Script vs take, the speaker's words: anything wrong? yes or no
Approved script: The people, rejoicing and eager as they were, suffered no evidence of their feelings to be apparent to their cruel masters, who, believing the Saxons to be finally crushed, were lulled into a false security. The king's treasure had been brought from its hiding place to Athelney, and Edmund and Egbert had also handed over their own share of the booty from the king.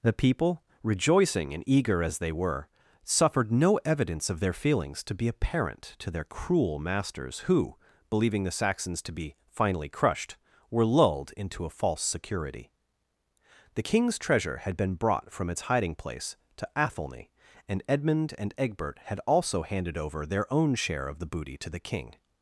yes